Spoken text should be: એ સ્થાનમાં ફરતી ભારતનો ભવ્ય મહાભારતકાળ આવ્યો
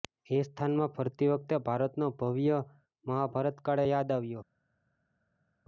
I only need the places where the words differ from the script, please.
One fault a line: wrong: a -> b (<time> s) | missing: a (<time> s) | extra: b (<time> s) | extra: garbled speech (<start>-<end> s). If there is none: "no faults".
extra: વખતે (1.3 s)
extra: યાદ (3.8 s)